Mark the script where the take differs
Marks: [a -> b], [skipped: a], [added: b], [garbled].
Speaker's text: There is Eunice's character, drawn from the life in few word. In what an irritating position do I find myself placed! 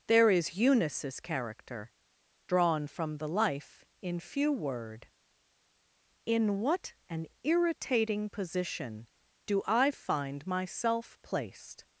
There is Eunice's character, drawn from the life in few word. In what an irritating position do I find myself placed!